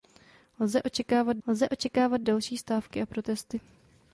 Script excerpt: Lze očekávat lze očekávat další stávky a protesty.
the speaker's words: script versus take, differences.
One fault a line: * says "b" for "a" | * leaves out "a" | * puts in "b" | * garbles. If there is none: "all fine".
all fine